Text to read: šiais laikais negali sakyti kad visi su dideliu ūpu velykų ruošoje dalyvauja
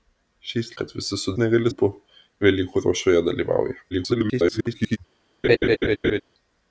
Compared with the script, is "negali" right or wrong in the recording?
wrong